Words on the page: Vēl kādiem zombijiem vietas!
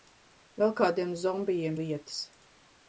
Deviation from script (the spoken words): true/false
false